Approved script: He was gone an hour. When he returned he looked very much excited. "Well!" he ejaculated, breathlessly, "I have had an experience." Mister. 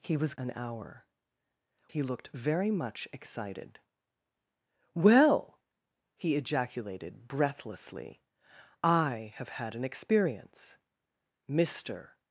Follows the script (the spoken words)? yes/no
no